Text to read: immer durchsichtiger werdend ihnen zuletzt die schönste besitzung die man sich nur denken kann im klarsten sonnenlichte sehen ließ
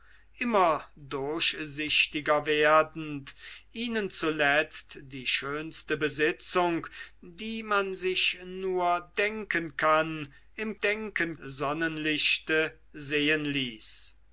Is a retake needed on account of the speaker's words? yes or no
yes